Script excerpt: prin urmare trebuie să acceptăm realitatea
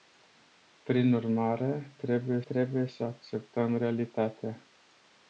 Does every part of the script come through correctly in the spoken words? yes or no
no